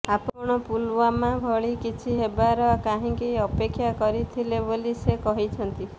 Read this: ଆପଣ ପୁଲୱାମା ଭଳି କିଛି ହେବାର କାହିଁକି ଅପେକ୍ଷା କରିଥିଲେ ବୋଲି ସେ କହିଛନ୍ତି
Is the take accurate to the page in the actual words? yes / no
yes